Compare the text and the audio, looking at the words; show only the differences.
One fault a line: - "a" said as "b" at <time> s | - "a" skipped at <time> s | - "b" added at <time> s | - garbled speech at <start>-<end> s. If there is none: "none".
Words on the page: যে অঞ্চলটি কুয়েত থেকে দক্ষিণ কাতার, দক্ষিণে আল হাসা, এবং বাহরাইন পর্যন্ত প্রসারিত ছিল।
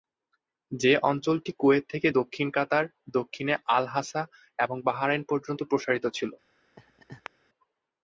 none